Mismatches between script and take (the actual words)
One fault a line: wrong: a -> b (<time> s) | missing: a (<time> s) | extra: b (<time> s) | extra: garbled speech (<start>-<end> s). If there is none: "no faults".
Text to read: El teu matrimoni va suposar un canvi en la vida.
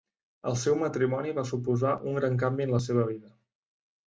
wrong: teu -> seu (0.6 s)
extra: gran (2.2 s)
extra: seva (2.9 s)